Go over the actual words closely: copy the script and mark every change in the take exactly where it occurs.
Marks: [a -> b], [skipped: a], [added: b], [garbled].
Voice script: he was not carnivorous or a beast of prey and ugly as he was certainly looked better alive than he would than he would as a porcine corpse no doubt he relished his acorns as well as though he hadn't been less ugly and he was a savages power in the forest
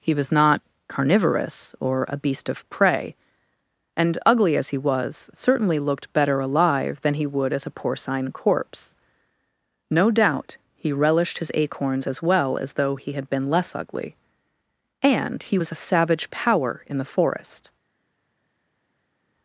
he was not carnivorous or a beast of prey and ugly as he was certainly looked better alive than he would [skipped: than he would] as a porcine corpse no doubt he relished his acorns as well as though he [hadn't -> had] been less ugly and he was a [savages -> savage] power in the forest